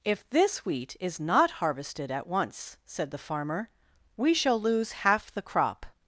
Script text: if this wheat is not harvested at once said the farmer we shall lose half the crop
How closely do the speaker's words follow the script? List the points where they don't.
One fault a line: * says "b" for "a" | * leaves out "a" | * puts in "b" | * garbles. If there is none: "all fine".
all fine